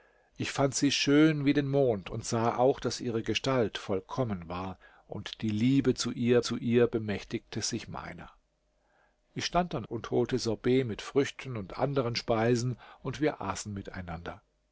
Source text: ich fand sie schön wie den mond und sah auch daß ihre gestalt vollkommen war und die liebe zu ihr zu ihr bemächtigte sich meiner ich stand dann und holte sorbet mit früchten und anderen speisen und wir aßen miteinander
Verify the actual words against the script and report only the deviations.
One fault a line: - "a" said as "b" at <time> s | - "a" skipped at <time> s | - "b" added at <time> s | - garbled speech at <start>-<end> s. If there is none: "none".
none